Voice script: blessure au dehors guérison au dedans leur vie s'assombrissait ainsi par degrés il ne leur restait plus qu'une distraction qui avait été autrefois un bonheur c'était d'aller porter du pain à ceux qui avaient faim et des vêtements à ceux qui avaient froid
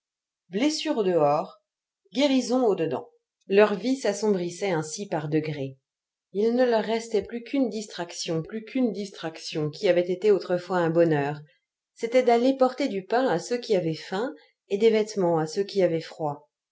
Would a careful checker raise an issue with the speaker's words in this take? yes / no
yes